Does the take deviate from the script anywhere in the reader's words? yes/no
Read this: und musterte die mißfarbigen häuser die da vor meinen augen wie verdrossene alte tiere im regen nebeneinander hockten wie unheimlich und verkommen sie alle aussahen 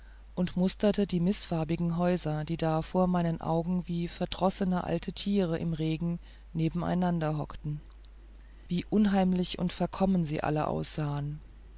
no